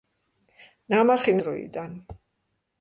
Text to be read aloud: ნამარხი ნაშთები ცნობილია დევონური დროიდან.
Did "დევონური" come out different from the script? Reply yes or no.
yes